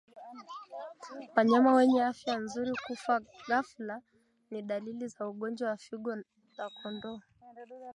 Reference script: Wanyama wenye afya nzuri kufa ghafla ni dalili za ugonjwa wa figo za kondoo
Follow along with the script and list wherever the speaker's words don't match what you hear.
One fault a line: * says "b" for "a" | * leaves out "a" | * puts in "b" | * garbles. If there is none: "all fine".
all fine